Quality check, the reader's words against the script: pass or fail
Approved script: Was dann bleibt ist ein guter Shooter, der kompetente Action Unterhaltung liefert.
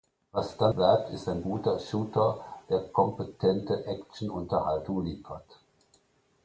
pass